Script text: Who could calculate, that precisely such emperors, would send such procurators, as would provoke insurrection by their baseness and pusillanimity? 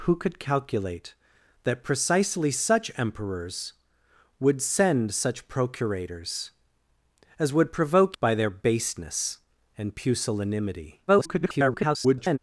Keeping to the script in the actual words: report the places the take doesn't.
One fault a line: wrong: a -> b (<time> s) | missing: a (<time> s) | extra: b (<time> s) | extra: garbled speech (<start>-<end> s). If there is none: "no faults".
missing: insurrection (8.2 s)
extra: garbled speech (11.1-12.4 s)